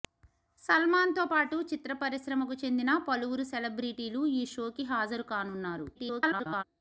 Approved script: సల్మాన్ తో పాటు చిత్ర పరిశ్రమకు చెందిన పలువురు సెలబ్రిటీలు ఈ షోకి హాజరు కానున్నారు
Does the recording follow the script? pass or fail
fail